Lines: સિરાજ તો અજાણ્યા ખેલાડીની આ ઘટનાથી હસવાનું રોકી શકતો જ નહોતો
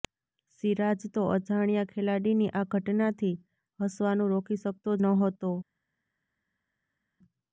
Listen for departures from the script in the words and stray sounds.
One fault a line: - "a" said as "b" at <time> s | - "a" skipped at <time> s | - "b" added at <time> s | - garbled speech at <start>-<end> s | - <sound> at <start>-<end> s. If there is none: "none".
- "જ" skipped at 5.0 s